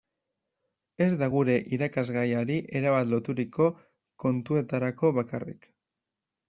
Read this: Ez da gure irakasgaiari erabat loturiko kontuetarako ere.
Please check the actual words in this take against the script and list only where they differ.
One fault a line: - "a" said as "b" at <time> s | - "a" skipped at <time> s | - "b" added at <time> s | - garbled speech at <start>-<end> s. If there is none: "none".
- "ere" said as "bakarrik" at 5.2 s